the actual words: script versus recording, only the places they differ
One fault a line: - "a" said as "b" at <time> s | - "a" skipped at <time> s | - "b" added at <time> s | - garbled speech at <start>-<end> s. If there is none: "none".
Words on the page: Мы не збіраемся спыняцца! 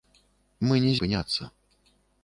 - "збіраемся" skipped at 0.9 s